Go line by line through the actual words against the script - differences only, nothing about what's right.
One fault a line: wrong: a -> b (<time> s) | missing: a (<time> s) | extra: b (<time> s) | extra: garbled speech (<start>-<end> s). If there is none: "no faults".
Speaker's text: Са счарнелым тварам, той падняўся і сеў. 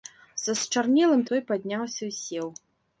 missing: тварам (1.2 s)